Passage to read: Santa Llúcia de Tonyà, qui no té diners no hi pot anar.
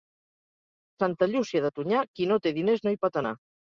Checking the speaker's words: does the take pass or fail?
pass